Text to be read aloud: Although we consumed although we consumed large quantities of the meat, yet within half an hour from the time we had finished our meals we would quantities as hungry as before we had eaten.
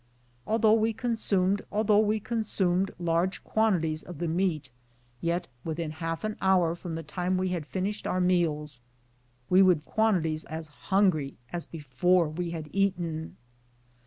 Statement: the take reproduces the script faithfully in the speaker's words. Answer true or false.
true